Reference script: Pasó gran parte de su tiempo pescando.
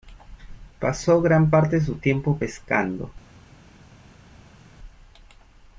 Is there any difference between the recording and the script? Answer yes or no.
no